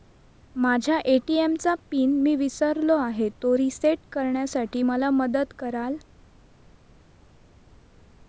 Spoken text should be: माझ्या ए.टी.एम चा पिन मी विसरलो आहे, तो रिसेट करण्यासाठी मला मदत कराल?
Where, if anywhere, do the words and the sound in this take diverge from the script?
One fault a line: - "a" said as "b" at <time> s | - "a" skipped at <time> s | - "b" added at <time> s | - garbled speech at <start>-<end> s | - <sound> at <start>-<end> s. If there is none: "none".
none